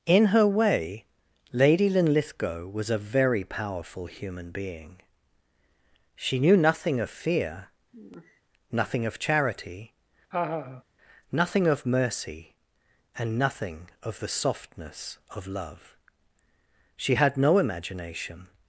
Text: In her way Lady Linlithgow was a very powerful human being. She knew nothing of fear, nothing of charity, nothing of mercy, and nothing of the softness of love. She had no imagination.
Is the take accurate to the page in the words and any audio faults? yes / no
no